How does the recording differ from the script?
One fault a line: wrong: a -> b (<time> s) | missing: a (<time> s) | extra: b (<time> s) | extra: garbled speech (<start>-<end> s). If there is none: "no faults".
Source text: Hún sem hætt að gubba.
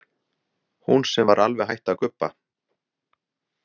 extra: var alveg (1.3 s)